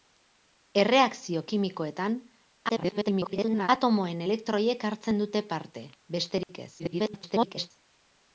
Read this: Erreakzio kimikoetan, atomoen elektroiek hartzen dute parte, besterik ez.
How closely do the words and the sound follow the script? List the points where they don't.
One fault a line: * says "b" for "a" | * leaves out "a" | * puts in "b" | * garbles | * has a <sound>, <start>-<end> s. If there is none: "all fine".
* garbles
* has a dropout, 6.4-6.5 s
* garbles